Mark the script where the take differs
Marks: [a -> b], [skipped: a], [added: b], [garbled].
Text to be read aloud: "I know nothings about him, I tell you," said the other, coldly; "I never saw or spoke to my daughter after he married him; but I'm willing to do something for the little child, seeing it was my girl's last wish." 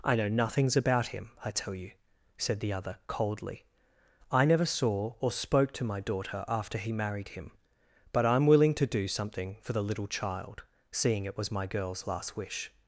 "I know nothings about him, I tell you," said the other, coldly; "I never saw or spoke to my daughter after he married him; but I'm willing to do something for the little child, seeing it was my girl's last wish."